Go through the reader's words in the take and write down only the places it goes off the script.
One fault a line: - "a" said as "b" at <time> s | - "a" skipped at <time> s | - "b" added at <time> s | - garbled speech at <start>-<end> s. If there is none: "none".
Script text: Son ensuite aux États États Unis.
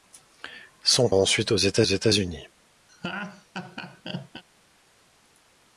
none